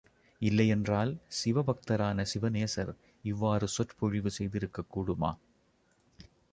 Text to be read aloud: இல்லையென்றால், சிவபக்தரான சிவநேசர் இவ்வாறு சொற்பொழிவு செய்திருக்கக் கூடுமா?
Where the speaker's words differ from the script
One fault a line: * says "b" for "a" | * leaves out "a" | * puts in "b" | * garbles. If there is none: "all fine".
all fine